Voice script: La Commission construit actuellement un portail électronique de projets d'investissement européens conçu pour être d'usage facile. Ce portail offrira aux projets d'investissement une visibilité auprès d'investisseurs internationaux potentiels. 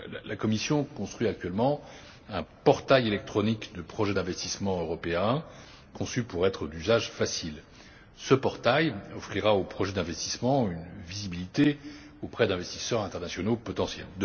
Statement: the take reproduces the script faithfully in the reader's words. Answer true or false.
true